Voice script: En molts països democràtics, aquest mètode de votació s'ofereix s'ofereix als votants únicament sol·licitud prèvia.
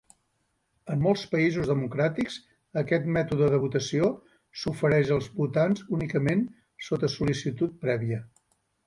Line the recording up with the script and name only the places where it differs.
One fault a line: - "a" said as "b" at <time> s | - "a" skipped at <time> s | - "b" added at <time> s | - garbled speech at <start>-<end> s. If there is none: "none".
- "s'ofereix" skipped at 5.1 s
- "sota" added at 6.9 s